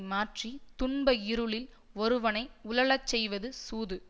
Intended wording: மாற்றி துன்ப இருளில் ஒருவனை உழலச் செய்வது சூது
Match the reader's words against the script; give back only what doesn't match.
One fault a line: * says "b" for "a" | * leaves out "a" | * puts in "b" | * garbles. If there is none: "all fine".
all fine